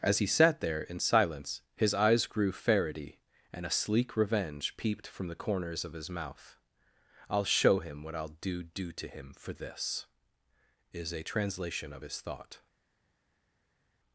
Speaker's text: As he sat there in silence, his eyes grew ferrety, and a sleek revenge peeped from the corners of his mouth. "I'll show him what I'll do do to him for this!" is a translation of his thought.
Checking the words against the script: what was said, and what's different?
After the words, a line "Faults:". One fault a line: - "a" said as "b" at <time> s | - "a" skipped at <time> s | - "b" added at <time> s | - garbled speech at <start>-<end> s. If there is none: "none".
As he sat there in silence, his eyes grew ferrety, and a sleek revenge peeped from the corners of his mouth. "I'll show him what I'll do do to him for this!" is a translation of his thought.
Faults:
none